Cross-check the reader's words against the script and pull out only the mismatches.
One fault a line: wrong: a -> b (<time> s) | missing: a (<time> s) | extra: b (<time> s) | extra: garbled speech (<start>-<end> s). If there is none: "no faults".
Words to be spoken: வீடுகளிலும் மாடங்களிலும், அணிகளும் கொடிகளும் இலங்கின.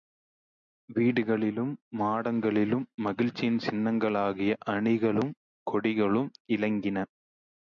extra: மகிழ்ச்சியின் சின்னங்களாகிய (3.0 s)